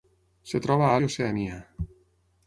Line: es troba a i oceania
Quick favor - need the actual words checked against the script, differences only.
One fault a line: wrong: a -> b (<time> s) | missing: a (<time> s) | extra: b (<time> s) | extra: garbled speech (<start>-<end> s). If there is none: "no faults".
no faults